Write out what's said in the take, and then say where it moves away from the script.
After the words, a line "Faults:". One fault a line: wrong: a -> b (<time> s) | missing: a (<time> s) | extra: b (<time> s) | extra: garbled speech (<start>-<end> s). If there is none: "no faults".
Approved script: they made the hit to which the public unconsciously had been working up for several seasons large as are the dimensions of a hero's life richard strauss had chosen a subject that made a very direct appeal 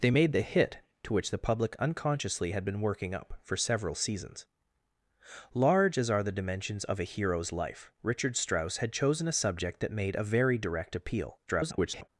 they made the hit to which the public unconsciously had been working up for several seasons large as are the dimensions of a hero's life richard strauss had chosen a subject that made a very direct appeal [garbled]
Faults:
extra: garbled speech (11.5-12.1 s)